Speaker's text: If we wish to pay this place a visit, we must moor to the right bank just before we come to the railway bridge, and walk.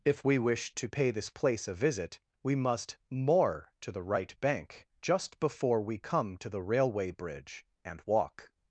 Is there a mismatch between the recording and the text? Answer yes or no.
no